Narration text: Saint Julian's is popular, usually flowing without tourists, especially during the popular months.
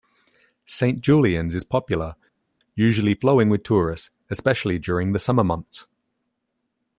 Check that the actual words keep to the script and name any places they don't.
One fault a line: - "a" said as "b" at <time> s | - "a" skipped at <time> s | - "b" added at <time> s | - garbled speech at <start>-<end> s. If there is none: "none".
- "without" said as "with" at 3.5 s
- "popular" said as "summer" at 5.2 s